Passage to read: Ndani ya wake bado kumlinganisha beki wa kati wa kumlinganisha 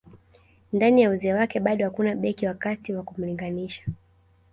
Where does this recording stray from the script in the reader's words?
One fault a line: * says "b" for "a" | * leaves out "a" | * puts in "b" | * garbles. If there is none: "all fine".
* puts in "uzee"
* says "hakuna" for "kumlinganisha"